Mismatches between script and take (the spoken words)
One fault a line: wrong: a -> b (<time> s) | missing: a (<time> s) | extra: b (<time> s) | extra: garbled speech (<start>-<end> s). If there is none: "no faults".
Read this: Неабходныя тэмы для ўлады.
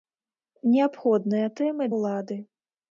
missing: для (1.9 s)